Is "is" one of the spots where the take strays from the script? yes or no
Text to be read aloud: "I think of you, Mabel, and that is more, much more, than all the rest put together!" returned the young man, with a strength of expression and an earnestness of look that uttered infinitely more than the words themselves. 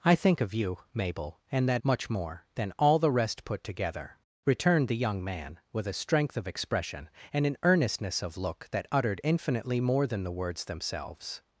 yes